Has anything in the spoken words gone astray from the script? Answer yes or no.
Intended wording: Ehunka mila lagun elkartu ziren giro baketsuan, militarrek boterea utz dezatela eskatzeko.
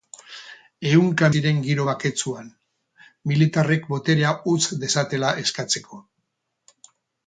yes